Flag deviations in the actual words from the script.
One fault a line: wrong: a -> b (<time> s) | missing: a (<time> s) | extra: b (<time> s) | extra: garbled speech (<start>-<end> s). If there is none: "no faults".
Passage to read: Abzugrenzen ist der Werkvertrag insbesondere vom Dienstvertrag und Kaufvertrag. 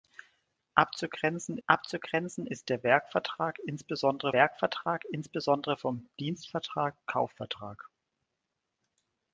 extra: abzugrenzen (1.7 s)
extra: Werkvertrag insbesondere (4.3 s)
missing: und (6.9 s)